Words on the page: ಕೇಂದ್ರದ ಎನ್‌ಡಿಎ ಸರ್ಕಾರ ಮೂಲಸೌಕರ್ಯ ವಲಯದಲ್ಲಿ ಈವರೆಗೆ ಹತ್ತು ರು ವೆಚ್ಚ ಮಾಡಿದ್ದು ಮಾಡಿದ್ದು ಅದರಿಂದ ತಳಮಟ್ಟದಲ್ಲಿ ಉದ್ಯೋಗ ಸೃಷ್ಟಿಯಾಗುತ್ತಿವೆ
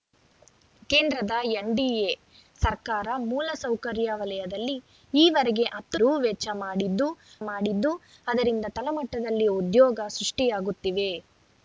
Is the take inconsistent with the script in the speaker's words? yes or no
no